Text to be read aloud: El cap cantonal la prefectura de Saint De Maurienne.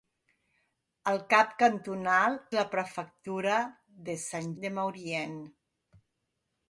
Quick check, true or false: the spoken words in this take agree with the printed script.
true